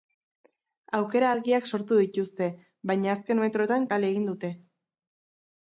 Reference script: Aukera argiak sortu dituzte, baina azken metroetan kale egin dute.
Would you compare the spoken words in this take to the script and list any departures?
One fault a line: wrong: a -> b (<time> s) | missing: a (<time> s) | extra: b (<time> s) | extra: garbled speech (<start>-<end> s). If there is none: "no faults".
no faults